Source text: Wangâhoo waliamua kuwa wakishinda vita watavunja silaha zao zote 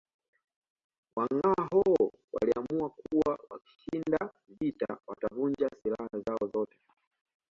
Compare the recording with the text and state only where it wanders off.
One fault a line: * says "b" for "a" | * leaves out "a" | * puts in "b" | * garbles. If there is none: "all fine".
all fine